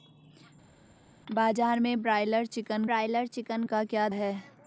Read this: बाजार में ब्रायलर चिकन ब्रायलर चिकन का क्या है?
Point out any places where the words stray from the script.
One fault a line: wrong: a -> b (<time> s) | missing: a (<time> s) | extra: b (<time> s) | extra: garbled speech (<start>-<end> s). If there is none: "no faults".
no faults